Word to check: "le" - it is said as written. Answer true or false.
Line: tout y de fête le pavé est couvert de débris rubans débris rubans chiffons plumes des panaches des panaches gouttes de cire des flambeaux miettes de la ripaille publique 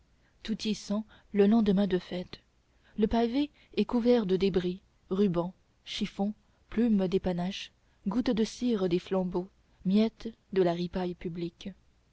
true